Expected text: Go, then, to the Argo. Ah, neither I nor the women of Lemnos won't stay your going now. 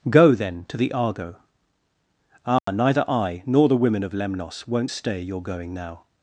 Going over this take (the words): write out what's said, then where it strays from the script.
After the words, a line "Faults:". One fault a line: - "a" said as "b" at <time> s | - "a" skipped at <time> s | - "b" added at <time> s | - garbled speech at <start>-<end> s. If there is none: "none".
Go, then, to the Argo. Ah, neither I nor the women of Lemnos won't stay your going now.
Faults:
none